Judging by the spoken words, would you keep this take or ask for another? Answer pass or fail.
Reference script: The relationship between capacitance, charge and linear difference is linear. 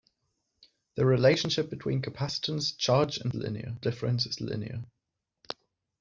pass